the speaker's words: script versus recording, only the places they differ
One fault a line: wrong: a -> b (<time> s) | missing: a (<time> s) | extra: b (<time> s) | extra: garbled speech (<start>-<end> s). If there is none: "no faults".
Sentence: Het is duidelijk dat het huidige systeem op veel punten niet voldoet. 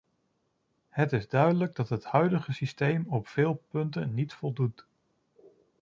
no faults